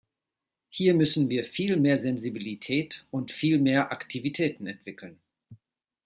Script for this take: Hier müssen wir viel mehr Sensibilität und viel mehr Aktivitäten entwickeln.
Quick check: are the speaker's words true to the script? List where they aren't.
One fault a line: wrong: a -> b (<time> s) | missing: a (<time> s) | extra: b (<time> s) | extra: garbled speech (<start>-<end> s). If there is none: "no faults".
no faults